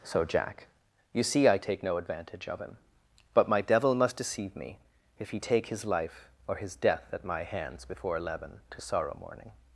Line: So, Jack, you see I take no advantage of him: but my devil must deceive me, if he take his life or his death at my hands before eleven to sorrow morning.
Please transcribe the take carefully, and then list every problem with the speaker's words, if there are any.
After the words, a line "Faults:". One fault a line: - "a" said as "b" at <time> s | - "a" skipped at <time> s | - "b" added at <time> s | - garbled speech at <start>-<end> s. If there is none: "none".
So, Jack, you see I take no advantage of him: but my devil must deceive me, if he take his life or his death at my hands before eleven to sorrow morning.
Faults:
none